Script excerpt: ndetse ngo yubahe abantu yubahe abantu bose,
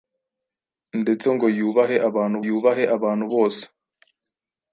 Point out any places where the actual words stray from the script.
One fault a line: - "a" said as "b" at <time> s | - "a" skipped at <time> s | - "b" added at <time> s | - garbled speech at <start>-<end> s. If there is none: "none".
none